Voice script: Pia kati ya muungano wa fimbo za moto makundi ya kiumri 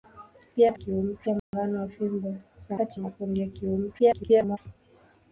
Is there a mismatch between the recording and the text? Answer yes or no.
yes